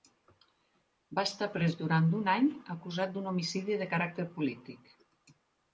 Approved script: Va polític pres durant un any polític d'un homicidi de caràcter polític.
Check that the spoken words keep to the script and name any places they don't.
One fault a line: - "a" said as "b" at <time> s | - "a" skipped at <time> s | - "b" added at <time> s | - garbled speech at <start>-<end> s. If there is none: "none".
- "polític" said as "estar" at 1.3 s
- "polític" said as "acusat" at 2.8 s